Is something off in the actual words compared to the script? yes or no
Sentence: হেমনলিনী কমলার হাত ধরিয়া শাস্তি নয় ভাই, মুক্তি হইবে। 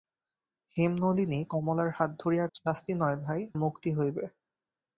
no